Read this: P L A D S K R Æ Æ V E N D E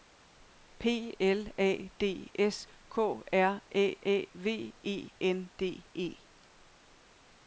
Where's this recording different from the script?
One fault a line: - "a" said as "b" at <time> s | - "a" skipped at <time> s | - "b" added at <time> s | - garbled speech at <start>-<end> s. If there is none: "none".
none